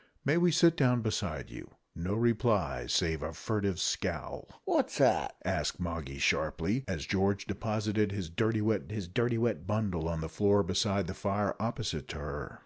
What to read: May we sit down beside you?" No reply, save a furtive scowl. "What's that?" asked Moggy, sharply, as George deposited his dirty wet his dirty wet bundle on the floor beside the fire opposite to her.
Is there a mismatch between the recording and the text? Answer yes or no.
no